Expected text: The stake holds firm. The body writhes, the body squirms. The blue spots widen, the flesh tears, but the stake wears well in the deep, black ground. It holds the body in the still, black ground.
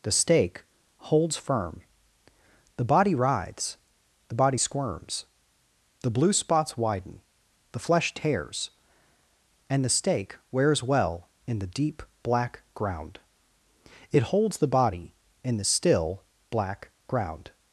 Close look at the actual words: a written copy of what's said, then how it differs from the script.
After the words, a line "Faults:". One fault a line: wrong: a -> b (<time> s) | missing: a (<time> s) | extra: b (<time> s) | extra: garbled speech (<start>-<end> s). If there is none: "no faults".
The stake holds firm. The body writhes, the body squirms. The blue spots widen, the flesh tears, and the stake wears well in the deep, black ground. It holds the body in the still, black ground.
Faults:
wrong: but -> and (9.7 s)